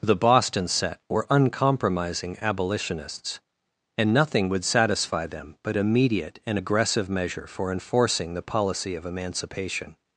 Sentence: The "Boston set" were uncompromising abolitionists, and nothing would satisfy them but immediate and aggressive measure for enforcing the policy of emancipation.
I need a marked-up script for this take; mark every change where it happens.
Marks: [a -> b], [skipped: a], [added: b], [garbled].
The "Boston set" were uncompromising abolitionists, and nothing would satisfy them but immediate and aggressive measure for enforcing the policy of emancipation.